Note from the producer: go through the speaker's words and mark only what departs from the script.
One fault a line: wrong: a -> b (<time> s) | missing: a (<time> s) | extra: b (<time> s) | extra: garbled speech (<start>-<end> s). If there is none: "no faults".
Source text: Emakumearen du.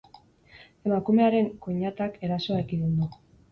extra: koinatak erasoa ekidin (1.7 s)